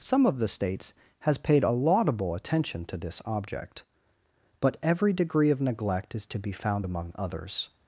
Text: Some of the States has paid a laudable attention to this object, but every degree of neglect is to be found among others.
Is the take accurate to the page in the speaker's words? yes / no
yes